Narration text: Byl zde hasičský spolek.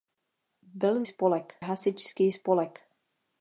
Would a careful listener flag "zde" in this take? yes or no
yes